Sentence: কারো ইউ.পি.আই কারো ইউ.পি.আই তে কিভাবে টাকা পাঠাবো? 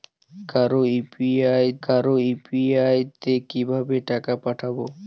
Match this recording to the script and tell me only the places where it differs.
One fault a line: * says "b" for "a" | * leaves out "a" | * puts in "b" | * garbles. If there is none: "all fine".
all fine